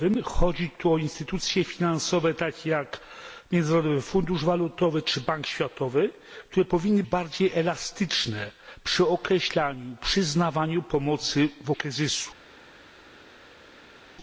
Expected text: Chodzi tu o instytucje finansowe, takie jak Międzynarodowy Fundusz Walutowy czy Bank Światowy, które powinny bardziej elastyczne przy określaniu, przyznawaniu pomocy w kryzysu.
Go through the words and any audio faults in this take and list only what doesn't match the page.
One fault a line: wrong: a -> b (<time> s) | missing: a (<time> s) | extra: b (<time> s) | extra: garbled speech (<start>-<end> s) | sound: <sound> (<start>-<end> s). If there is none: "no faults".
no faults